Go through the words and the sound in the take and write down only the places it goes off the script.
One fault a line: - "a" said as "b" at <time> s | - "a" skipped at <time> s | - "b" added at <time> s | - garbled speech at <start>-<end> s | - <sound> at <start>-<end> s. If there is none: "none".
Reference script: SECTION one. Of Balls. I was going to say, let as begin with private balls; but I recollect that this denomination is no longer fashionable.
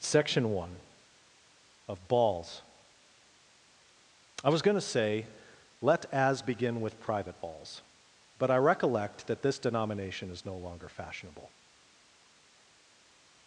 none